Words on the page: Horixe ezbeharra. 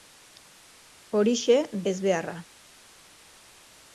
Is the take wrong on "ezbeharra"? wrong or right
right